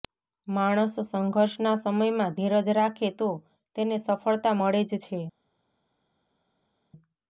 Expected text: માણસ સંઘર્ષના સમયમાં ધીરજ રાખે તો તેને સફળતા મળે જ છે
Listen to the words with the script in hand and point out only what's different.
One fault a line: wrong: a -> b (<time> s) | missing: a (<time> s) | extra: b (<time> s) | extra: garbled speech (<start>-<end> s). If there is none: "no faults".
no faults